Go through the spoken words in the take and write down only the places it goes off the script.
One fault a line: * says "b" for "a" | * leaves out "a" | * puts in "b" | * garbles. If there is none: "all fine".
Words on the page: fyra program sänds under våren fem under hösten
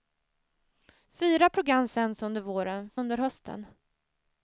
* leaves out "fem"